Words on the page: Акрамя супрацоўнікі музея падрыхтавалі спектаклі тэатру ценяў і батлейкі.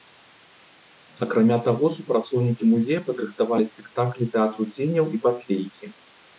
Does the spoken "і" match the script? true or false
true